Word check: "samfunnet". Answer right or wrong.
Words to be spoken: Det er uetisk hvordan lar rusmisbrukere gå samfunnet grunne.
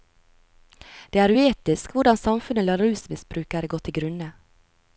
wrong